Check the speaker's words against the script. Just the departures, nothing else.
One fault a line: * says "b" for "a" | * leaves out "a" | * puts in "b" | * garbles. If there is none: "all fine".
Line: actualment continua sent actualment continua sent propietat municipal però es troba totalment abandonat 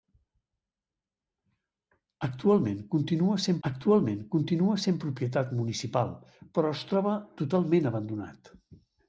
all fine